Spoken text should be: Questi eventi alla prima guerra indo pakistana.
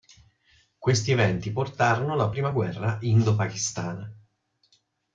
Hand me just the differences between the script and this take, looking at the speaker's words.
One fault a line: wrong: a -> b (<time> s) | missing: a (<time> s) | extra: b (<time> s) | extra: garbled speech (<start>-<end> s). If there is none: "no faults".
extra: portarono (1.5 s)